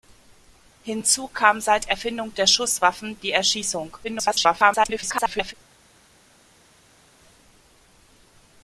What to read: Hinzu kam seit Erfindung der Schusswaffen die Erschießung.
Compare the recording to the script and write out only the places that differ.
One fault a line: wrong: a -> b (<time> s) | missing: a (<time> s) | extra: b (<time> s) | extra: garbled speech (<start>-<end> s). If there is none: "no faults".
extra: garbled speech (4.0-5.5 s)